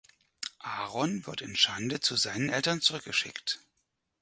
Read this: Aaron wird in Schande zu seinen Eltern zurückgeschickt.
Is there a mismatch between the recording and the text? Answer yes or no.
no